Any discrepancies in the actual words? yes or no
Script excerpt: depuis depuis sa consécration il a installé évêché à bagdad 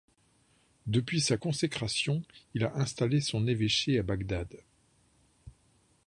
yes